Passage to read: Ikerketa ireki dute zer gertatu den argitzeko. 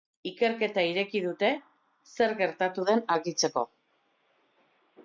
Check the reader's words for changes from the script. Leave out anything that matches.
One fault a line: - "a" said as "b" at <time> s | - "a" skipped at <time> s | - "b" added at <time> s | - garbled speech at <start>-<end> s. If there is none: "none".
none